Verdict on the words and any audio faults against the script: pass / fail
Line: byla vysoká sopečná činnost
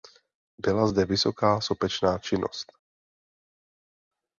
fail